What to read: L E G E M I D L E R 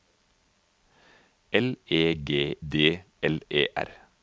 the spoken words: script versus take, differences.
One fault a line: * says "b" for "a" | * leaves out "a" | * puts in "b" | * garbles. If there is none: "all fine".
* leaves out "E M I"